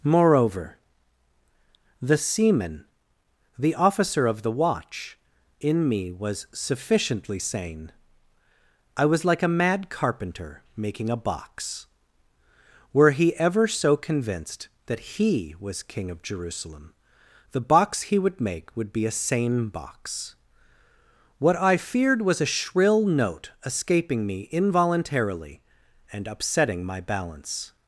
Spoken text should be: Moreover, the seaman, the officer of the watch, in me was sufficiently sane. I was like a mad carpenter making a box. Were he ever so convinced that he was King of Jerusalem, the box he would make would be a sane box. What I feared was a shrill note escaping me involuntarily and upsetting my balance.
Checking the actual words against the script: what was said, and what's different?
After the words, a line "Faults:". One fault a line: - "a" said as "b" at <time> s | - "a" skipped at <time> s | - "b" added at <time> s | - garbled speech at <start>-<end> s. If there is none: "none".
Moreover, the seaman, the officer of the watch, in me was sufficiently sane. I was like a mad carpenter making a box. Were he ever so convinced that he was King of Jerusalem, the box he would make would be a sane box. What I feared was a shrill note escaping me involuntarily and upsetting my balance.
Faults:
none